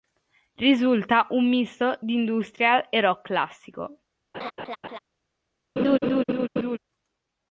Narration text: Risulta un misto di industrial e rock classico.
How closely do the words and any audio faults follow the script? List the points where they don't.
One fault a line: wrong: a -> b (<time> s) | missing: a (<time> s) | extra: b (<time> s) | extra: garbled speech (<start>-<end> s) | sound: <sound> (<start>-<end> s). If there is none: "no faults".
sound: laugh (4.3-5.0 s)
sound: laugh (5.8-6.8 s)